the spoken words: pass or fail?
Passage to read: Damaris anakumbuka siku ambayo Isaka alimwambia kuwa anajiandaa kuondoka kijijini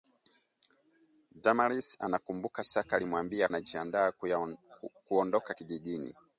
fail